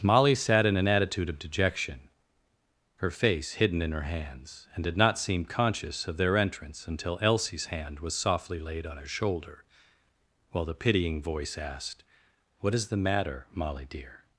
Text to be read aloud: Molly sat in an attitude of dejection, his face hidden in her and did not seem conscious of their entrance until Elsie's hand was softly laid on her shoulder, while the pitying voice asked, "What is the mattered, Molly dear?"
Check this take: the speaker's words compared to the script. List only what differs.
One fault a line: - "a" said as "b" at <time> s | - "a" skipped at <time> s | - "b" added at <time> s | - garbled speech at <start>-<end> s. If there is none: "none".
- "his" said as "her" at 3.0 s
- "hands" added at 4.0 s
- "mattered" said as "matter" at 13.0 s